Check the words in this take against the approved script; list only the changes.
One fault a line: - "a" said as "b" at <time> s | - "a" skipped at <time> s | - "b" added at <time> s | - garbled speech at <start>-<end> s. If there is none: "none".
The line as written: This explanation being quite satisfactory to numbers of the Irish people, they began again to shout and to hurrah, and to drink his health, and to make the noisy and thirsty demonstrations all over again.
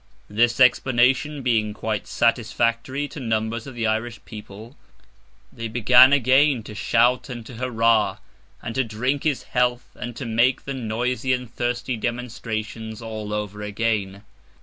none